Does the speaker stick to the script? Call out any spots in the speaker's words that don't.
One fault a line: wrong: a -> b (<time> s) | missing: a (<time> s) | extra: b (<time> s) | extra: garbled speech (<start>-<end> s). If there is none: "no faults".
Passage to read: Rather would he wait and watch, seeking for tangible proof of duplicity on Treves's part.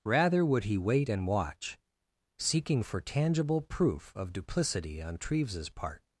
no faults